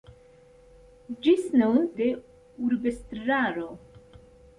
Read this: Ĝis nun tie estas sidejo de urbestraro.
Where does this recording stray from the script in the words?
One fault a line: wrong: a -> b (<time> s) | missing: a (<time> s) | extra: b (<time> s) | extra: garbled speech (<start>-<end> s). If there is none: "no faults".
missing: tie estas sidejo (1.8 s)